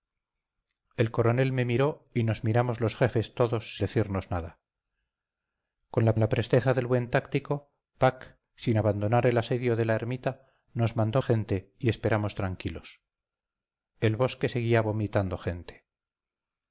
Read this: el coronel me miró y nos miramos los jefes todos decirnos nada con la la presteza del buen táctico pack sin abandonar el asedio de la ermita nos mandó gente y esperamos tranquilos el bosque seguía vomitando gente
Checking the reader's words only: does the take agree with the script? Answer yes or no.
yes